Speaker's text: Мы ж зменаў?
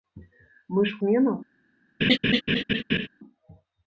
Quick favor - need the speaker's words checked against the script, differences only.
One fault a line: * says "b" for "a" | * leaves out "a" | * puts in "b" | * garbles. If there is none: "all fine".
all fine